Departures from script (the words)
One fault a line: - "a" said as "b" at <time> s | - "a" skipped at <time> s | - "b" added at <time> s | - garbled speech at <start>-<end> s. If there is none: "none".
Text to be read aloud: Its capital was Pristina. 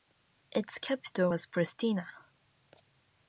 none